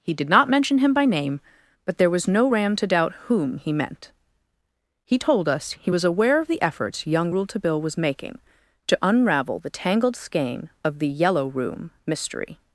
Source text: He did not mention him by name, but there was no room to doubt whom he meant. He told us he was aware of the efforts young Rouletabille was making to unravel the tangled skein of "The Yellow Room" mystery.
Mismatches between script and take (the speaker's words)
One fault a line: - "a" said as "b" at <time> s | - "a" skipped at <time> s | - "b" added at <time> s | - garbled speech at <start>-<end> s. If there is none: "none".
- "room" said as "ram" at 2.5 s